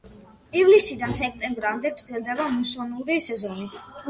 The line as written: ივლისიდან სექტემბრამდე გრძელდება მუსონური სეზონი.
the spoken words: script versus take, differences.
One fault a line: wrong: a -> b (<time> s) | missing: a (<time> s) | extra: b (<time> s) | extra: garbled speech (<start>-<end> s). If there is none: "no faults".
no faults